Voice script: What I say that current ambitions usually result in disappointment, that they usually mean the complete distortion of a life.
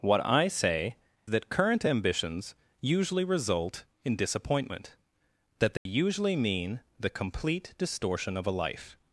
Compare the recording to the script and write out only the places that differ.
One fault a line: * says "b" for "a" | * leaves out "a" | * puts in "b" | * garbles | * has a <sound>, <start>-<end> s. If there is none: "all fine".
* has a dropout, 5.8-5.9 s